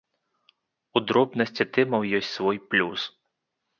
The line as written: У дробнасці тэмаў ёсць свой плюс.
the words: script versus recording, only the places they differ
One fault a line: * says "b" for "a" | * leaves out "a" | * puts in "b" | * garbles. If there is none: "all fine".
all fine